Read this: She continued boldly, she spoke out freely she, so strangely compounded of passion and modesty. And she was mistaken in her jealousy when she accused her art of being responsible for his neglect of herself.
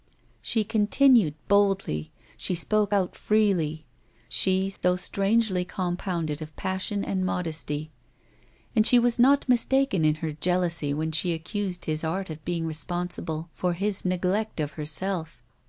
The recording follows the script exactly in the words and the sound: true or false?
false